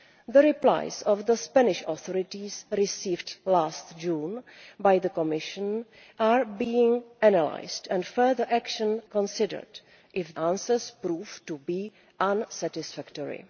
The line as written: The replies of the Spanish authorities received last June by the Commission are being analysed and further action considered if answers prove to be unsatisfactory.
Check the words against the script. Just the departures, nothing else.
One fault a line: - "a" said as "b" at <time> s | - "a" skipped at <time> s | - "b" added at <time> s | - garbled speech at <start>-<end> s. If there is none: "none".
none